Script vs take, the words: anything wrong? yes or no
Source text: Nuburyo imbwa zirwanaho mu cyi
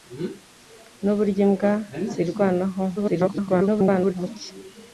yes